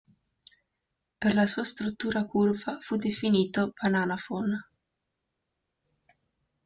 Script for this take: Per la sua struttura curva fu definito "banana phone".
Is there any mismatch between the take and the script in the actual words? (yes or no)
no